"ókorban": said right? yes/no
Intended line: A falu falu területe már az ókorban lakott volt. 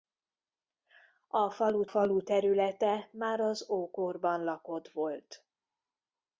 yes